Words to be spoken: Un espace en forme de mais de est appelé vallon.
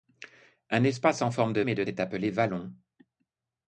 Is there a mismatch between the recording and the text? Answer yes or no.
no